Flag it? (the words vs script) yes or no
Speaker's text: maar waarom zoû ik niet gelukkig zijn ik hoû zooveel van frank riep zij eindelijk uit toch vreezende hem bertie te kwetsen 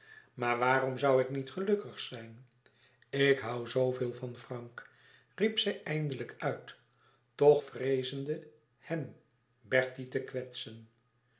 no